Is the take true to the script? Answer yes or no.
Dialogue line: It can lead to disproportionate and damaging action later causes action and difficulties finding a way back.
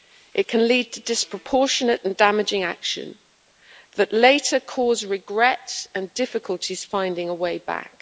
no